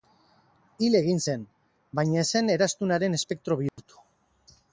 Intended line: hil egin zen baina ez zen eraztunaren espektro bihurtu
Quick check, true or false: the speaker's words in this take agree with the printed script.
true